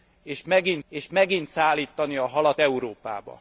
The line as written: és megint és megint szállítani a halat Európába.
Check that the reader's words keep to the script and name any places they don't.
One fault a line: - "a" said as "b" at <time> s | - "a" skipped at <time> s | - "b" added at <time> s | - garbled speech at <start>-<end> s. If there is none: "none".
none